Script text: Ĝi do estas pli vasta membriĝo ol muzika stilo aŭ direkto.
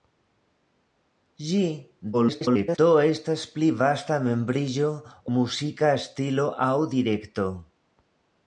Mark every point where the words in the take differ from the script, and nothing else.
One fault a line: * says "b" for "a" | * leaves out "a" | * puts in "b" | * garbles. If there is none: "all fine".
* garbles
* leaves out "ol"